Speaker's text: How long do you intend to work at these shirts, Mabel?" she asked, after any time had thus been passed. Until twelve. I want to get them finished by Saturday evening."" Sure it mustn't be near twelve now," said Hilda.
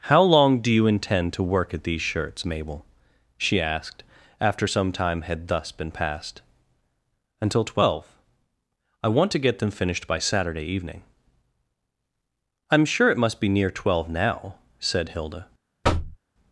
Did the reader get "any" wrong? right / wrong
wrong